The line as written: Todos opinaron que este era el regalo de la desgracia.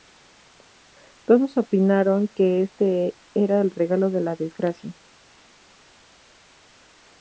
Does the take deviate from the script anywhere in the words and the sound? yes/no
no